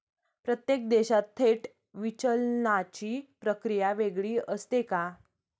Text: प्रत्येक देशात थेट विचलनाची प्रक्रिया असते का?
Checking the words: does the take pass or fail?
fail